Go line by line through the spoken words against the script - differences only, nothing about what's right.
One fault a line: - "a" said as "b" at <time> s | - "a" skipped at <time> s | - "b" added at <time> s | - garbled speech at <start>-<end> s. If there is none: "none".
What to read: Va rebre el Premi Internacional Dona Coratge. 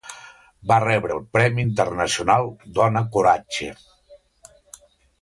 none